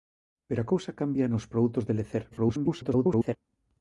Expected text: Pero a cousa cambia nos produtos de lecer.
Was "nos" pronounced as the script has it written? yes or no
yes